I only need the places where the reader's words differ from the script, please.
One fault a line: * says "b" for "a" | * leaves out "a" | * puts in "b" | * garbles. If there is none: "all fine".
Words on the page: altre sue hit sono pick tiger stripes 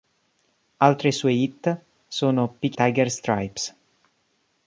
all fine